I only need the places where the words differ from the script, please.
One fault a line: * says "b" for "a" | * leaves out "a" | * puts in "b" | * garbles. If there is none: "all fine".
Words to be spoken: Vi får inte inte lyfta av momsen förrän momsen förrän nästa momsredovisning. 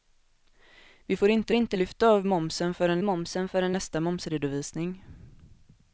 all fine